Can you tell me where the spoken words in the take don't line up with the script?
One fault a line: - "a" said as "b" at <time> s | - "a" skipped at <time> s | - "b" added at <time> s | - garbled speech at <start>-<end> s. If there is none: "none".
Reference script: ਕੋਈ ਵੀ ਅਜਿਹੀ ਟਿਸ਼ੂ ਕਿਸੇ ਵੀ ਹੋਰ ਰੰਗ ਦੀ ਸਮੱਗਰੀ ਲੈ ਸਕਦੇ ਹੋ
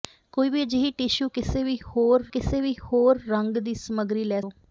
- "ਕਿਸੇ ਵੀ ਹੋਰ" added at 2.3 s
- "ਸਕਦੇ" skipped at 4.4 s